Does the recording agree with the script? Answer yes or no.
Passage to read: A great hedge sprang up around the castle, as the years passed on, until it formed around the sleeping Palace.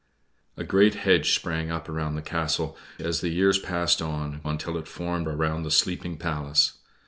yes